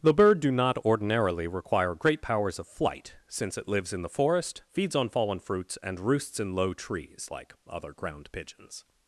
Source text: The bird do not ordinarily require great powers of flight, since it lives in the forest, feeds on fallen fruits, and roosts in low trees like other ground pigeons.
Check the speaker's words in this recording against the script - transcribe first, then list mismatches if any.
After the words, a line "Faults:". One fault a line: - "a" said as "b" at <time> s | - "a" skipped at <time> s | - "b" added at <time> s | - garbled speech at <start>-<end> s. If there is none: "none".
The bird do not ordinarily require great powers of flight, since it lives in the forest, feeds on fallen fruits, and roosts in low trees like other ground pigeons.
Faults:
none